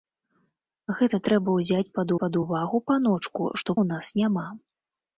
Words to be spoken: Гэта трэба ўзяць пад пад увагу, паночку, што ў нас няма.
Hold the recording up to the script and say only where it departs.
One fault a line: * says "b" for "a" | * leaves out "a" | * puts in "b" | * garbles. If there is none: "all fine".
all fine